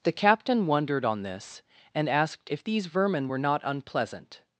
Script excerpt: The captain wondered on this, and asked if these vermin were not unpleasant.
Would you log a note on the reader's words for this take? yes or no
no